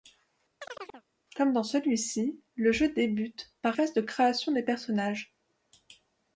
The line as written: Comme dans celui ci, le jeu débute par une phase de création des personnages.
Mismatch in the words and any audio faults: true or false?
true